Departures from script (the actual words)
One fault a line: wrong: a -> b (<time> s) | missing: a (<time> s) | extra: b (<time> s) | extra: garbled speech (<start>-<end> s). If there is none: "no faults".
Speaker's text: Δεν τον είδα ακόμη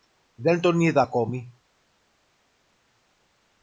no faults